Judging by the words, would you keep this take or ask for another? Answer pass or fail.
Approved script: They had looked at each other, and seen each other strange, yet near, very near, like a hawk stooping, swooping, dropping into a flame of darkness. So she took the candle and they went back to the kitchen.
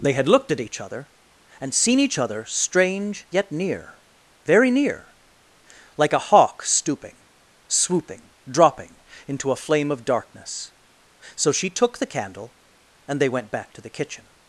pass